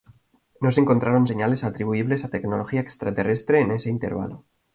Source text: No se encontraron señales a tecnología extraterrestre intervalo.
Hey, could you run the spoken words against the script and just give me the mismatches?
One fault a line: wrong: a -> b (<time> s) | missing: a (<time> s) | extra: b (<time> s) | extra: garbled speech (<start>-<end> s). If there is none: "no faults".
extra: atribuibles (1.6 s)
extra: en ese (3.6 s)